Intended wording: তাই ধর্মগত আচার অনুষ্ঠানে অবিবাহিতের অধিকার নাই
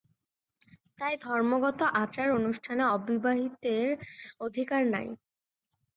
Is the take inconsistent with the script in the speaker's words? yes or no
no